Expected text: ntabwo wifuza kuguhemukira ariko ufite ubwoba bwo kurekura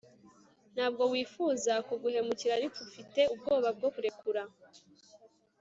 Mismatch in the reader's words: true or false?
false